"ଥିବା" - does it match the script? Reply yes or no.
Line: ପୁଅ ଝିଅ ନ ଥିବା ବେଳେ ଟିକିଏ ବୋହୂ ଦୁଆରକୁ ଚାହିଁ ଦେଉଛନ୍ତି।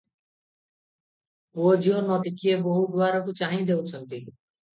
no